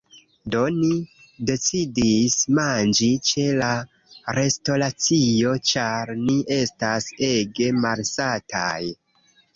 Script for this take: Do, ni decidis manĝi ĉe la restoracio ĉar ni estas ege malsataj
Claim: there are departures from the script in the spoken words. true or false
false